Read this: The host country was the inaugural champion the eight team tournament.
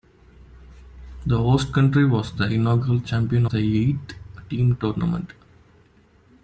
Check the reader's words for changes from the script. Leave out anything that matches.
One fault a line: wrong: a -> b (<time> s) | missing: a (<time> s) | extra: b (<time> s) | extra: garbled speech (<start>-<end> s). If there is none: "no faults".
no faults